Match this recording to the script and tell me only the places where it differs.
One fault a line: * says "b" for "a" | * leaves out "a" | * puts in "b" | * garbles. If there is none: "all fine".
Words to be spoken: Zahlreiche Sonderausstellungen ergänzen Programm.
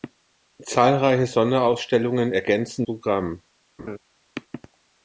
all fine